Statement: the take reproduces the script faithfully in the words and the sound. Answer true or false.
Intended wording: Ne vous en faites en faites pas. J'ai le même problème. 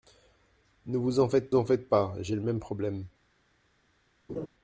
false